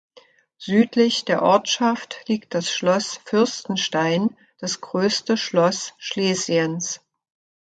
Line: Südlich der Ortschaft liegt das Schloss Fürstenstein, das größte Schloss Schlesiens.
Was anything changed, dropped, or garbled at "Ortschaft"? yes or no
no